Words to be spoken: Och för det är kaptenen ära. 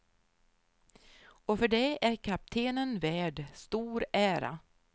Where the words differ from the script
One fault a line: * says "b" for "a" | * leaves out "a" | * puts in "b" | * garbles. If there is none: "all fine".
* puts in "värd stor"